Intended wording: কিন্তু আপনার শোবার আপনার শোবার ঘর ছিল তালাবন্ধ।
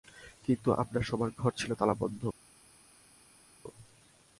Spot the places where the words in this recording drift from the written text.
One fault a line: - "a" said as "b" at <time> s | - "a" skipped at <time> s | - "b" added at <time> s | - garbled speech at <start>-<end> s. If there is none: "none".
- "আপনার শোবার" skipped at 1.3 s